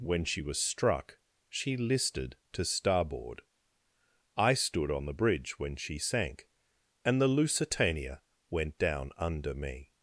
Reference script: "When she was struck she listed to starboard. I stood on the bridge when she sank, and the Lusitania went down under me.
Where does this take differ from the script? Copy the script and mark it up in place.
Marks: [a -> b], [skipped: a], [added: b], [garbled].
"When she was struck she listed to starboard. I stood on the bridge when she sank, and the Lusitania went down under me.